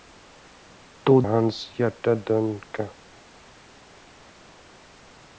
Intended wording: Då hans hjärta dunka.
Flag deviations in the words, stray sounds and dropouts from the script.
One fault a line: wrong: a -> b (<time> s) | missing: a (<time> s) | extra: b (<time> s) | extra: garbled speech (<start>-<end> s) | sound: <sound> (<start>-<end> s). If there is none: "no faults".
no faults